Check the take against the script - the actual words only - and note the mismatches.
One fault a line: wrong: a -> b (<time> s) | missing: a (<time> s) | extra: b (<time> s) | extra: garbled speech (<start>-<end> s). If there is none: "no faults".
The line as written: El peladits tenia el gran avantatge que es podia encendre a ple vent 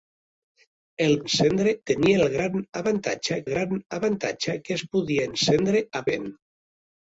wrong: peladits -> encendre (1.3 s)
extra: gran avantatge (3.5 s)
missing: ple (6.0 s)